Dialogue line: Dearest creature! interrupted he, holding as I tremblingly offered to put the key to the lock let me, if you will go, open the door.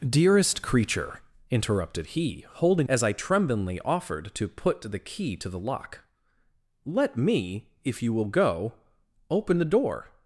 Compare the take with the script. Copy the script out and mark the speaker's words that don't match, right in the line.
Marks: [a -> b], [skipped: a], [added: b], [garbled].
Dearest creature! interrupted he, holding as I tremblingly offered to put the key to the lock let me, if you will go, open the door.